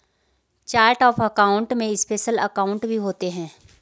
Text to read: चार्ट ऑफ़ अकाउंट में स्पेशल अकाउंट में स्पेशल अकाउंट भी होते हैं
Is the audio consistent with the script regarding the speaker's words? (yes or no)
no